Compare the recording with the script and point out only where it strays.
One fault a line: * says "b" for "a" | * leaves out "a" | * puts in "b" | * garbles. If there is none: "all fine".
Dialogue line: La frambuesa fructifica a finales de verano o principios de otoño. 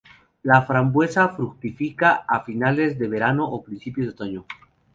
all fine